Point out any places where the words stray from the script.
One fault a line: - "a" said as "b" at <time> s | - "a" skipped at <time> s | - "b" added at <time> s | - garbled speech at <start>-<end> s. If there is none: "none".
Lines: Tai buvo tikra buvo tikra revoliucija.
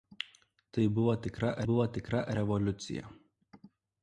none